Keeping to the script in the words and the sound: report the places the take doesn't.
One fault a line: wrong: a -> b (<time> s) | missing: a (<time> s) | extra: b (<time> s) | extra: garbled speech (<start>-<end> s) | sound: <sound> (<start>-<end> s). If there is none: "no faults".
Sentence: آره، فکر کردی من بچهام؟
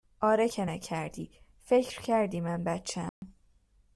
extra: که نکردی (0.5 s)
sound: dropout (3.1-3.2 s)